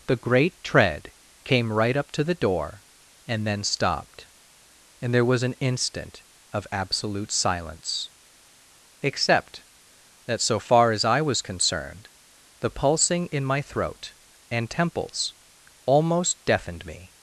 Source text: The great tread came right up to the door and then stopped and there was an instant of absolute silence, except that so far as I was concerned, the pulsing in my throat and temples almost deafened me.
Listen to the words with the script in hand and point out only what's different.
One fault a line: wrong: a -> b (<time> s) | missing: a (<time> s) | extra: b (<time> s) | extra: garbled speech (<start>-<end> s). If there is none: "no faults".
no faults